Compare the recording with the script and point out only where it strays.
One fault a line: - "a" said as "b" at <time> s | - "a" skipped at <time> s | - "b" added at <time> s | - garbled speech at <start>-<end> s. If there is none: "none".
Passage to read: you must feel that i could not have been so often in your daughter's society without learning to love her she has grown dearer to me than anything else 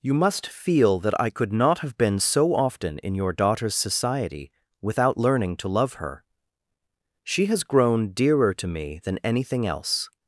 none